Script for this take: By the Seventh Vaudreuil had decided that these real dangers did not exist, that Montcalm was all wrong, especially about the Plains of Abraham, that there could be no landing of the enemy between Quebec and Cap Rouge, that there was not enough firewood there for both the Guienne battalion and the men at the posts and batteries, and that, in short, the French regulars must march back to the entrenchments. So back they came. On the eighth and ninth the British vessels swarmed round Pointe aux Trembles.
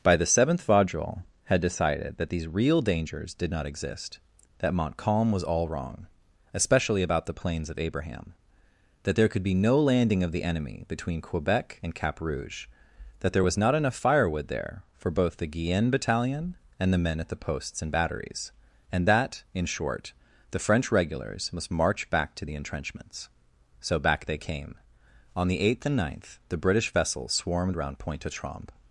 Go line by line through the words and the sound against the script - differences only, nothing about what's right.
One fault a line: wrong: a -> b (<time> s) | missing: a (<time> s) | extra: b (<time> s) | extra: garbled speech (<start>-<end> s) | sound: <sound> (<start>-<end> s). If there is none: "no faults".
no faults